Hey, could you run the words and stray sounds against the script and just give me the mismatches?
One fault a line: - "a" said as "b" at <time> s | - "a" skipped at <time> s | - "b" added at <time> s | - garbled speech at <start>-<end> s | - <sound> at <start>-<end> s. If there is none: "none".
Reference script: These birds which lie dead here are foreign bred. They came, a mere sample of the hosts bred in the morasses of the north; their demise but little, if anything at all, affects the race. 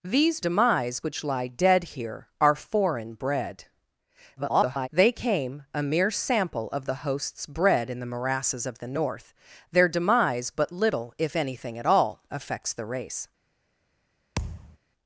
- "birds" said as "demise" at 0.4 s
- garbled speech at 4.4-4.9 s
- thud at 14.4-14.8 s